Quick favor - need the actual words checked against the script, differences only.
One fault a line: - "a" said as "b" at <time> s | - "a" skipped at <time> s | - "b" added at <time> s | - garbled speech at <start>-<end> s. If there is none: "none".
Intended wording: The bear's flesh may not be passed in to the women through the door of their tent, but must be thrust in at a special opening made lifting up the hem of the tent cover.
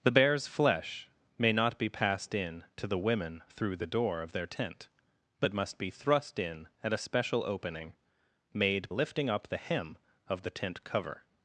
none